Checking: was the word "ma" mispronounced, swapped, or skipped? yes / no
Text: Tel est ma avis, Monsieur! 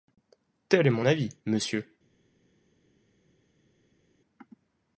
yes